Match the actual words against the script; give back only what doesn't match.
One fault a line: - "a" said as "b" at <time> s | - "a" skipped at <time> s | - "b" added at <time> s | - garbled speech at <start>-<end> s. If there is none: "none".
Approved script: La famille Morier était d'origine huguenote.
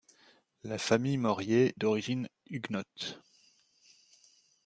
- "était" skipped at 1.8 s